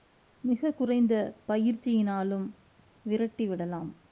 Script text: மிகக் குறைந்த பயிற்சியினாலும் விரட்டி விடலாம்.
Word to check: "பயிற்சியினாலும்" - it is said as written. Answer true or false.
true